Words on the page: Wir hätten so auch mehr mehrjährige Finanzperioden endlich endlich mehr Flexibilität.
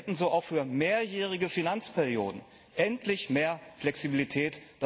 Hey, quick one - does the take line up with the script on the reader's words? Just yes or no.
no